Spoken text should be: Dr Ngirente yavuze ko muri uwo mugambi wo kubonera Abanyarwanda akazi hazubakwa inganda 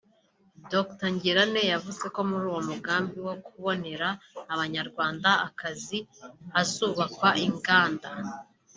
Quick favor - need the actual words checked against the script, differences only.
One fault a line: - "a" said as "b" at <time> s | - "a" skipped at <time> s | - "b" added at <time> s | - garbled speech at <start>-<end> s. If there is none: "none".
none